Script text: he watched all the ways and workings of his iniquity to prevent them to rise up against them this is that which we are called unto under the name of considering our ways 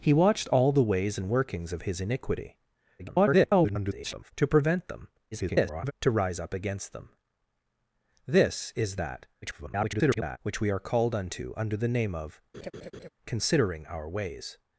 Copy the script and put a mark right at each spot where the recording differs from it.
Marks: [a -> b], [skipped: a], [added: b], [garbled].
he watched all the ways and workings of his iniquity [garbled] to prevent them [garbled] to rise up against them this is that [garbled] which we are called unto under the name of considering our ways